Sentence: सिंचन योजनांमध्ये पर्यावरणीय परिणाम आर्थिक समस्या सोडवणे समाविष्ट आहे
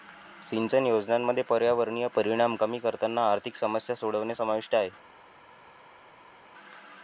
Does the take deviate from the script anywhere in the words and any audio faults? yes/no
yes